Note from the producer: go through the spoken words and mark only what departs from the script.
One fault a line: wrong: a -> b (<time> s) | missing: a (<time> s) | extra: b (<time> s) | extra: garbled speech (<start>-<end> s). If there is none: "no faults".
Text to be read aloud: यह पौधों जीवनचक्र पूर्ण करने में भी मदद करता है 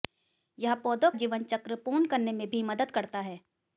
no faults